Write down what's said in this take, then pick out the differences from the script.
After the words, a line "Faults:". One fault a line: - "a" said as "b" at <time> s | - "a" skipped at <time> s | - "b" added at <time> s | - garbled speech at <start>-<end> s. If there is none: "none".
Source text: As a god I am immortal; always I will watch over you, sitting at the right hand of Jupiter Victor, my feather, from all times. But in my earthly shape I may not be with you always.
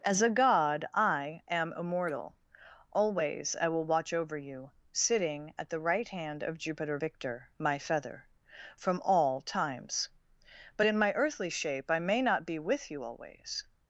As a god I am immortal; always I will watch over you, sitting at the right hand of Jupiter Victor, my feather, from all times. But in my earthly shape I may not be with you always.
Faults:
none